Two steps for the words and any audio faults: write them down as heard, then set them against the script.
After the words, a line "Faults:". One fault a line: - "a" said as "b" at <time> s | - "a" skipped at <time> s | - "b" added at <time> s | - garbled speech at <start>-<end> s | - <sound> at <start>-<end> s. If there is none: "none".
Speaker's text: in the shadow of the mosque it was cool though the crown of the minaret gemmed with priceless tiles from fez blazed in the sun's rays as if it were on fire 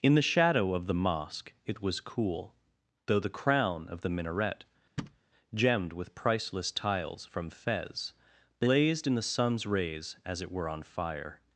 in the shadow of the mosque it was cool though the crown of the minaret gemmed with priceless tiles from fez blazed in the sun's rays as it were on fire
Faults:
- thud at 5.0-5.2 s
- "if" skipped at 10.4 s